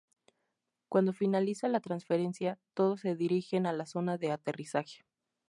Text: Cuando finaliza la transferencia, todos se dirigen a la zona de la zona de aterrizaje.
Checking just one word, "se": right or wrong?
right